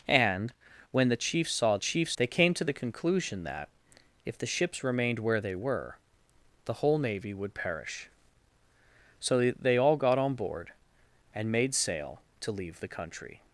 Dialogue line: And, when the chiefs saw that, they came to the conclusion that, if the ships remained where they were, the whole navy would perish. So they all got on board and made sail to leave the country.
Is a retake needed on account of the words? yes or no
yes